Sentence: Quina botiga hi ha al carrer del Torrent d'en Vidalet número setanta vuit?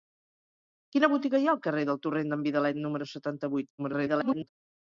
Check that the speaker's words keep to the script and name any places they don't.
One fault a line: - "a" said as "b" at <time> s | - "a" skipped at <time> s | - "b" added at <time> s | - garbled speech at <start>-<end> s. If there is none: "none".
- garbled speech at 3.8-4.5 s